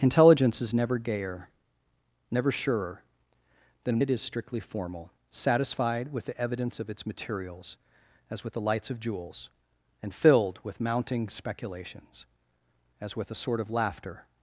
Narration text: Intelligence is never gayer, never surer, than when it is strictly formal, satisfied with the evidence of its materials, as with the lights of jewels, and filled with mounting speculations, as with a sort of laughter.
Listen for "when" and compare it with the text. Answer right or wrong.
wrong